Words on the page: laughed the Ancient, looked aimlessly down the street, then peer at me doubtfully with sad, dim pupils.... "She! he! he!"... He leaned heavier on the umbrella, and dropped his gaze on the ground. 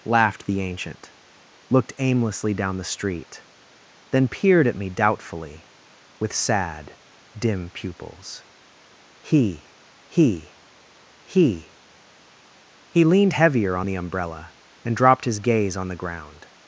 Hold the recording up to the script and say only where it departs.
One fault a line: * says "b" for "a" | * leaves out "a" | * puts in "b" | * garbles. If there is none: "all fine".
* says "peered" for "peer"
* says "He" for "She"